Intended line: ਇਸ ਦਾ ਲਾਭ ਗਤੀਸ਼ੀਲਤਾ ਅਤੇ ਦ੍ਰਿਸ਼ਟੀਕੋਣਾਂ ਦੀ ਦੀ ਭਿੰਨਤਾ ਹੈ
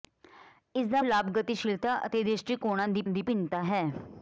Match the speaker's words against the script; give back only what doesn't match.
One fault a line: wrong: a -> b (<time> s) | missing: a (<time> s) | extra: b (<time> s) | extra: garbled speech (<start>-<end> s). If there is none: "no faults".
no faults